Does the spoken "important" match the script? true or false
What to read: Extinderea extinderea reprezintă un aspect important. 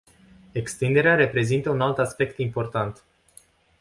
true